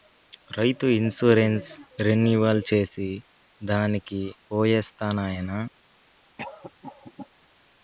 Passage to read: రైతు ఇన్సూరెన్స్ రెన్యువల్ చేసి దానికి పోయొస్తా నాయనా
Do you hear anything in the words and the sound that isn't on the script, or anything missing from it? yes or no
yes